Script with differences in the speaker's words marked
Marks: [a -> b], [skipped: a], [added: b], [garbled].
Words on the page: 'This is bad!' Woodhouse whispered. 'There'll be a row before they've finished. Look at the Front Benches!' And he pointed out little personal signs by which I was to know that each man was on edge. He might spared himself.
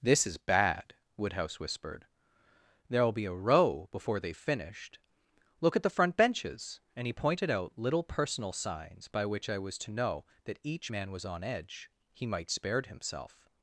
'This is bad!' Woodhouse whispered. 'There'll be a row before they've finished. Look at the Front Benches!' And he pointed out little personal signs by which I was to know that each man was on edge. He might spared himself.